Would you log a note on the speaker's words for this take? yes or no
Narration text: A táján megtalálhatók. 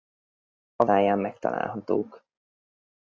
no